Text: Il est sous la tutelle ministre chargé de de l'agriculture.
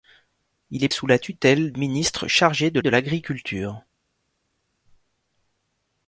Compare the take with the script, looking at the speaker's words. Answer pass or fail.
pass